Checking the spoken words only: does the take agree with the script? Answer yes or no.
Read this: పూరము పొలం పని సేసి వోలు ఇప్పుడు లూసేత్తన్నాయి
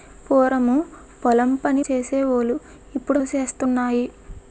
yes